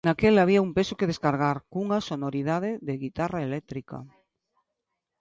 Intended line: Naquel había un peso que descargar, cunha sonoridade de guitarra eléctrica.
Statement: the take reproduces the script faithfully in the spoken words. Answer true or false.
true